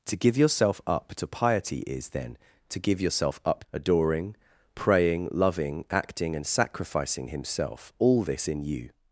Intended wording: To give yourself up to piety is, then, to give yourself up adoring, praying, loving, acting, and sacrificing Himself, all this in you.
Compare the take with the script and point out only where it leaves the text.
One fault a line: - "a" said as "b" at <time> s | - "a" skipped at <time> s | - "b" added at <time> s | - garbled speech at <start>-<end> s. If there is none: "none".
none